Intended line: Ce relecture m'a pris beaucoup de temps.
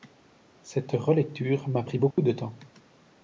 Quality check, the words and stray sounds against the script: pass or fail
fail